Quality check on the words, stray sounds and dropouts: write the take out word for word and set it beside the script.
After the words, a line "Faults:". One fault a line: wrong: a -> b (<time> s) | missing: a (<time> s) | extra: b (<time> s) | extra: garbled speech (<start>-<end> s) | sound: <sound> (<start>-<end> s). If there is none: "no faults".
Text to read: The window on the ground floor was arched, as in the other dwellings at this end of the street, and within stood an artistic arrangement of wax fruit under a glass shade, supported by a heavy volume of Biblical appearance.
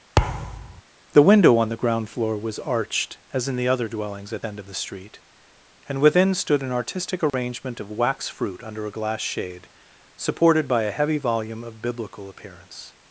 The window on the ground floor was arched, as in the other dwellings at end of the street, and within stood an artistic arrangement of wax fruit under a glass shade, supported by a heavy volume of Biblical appearance.
Faults:
sound: thud (0.2-0.8 s)
missing: this (4.4 s)
sound: dropout (7.3-7.3 s)